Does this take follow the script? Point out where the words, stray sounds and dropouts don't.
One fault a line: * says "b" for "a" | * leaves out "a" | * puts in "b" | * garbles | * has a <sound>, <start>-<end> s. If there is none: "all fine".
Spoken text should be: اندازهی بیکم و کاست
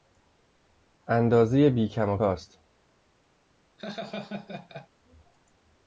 * has a laugh, 3.8-4.9 s